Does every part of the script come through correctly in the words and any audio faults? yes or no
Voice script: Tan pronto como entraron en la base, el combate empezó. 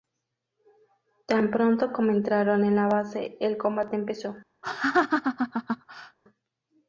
no